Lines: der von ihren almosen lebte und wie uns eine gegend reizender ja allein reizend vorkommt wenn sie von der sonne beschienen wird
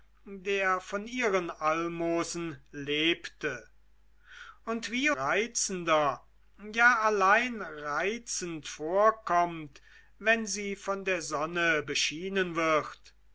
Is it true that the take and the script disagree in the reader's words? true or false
true